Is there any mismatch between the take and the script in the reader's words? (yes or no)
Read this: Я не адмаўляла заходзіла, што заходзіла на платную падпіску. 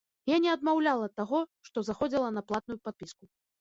yes